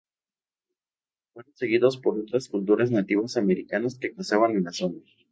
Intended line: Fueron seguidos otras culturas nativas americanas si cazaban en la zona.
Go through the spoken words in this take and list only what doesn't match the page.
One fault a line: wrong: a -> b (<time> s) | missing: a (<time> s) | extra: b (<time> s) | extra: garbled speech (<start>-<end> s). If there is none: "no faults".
extra: por (2.0 s)
wrong: si -> que (4.0 s)